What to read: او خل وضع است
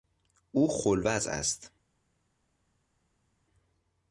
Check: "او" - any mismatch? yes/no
no